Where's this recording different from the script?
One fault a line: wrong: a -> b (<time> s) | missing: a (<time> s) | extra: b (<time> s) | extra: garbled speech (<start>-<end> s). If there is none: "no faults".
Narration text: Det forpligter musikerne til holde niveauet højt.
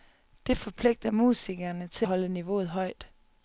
no faults